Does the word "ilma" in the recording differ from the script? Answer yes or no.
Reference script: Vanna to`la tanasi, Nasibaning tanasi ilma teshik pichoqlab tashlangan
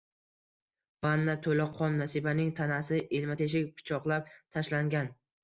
no